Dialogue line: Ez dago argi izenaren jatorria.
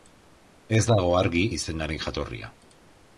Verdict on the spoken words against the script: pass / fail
pass